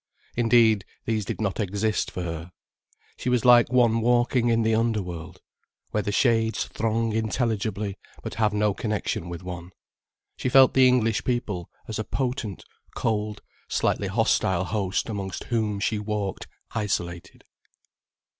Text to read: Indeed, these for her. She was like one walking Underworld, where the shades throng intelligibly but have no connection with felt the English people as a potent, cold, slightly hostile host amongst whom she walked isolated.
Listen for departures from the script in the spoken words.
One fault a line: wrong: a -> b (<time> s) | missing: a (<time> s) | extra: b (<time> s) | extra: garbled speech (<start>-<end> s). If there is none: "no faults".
extra: did not exist (1.2 s)
extra: in the (4.5 s)
extra: one She (9.4 s)